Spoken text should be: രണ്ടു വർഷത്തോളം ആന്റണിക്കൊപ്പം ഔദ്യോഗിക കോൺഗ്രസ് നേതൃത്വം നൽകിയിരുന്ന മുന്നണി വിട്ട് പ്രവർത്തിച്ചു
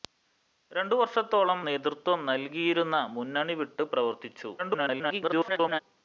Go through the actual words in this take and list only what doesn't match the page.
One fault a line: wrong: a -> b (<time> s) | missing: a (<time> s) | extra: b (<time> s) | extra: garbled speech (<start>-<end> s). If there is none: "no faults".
missing: ആന്റണിക്കൊപ്പം ഔദ്യോഗിക കോൺഗ്രസ് (1.6 s)
extra: garbled speech (4.6-5.8 s)